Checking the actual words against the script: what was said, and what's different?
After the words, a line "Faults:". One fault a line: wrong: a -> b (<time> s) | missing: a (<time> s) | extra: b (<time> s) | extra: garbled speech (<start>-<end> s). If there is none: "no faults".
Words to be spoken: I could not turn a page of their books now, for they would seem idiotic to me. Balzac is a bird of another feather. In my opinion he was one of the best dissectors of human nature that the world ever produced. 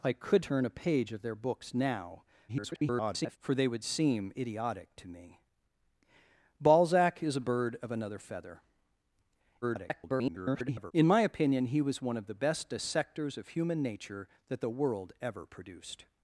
I could turn a page of their books now, [garbled] for they would seem idiotic to me. Balzac is a bird of another feather. [garbled] In my opinion he was one of the best dissectors of human nature that the world ever produced.
Faults:
missing: not (0.5 s)
extra: garbled speech (2.5-3.4 s)
extra: garbled speech (9.6-10.9 s)